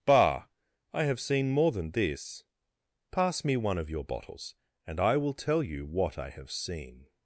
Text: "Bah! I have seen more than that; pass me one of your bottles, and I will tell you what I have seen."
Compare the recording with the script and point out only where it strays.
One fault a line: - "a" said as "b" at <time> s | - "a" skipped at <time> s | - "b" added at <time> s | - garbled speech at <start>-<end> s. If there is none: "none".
- "that" said as "this" at 1.9 s